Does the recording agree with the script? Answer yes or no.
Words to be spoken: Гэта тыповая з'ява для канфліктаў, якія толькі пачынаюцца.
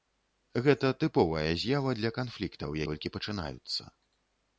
no